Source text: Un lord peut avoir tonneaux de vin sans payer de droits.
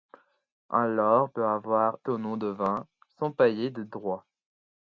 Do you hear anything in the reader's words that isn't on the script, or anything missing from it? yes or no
no